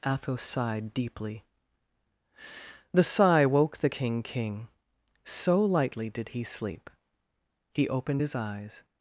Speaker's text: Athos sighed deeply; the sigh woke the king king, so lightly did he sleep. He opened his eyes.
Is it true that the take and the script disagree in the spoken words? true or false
false